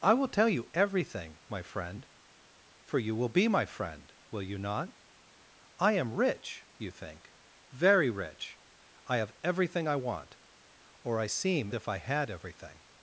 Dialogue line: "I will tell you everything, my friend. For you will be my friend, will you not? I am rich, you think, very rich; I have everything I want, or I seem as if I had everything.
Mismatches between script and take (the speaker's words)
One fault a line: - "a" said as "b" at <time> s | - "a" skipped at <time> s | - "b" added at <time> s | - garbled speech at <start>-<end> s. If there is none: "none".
- "as" skipped at 11.7 s